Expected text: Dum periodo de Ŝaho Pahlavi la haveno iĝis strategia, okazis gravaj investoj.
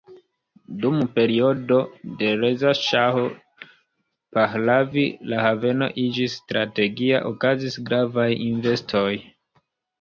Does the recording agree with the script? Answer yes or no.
no